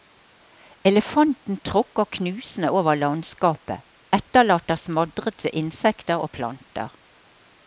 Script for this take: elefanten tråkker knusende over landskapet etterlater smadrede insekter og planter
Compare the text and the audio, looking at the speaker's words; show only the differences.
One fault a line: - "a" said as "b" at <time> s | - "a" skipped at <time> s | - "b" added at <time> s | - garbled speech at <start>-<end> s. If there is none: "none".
none